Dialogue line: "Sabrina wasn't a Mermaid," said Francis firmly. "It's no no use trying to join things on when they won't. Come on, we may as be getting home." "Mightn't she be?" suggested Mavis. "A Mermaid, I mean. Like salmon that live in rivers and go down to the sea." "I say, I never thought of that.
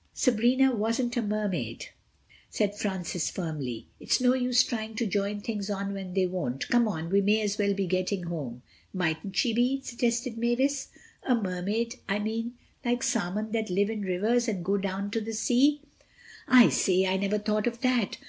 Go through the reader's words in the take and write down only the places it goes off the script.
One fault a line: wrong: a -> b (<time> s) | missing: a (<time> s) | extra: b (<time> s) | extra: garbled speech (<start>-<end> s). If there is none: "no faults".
missing: no (4.3 s)
extra: well (7.6 s)